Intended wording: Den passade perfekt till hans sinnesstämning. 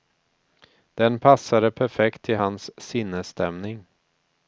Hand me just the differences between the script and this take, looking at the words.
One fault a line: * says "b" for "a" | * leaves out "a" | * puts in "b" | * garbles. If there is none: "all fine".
all fine